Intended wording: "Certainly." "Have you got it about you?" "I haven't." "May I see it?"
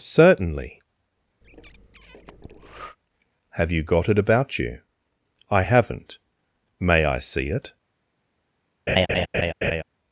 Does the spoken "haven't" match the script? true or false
true